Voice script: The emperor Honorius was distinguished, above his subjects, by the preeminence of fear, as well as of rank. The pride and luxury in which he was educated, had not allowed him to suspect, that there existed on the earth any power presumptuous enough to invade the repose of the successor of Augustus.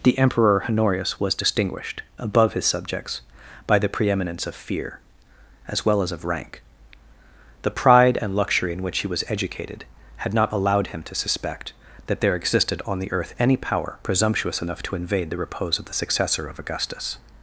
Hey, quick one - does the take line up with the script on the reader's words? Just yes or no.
yes